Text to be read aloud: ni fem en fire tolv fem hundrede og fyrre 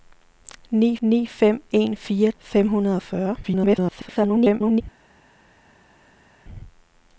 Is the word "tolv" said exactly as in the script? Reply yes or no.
no